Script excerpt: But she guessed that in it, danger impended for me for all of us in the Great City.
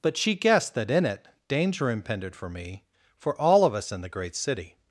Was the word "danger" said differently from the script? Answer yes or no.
no